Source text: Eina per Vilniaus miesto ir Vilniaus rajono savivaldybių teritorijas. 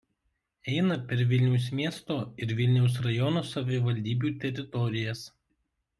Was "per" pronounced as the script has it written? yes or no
yes